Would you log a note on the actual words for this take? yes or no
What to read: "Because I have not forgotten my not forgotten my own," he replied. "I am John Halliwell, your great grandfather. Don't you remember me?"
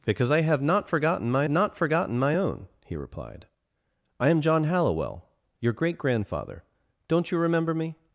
no